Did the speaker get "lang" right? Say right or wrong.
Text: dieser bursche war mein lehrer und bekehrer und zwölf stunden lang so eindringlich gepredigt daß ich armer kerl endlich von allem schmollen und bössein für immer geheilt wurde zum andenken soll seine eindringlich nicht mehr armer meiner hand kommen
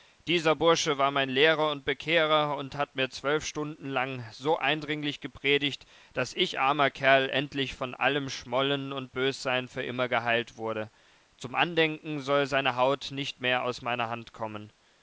right